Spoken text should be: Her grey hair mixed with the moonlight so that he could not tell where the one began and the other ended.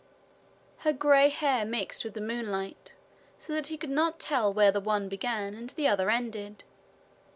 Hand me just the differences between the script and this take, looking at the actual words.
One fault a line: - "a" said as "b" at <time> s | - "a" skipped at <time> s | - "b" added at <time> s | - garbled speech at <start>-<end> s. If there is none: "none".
none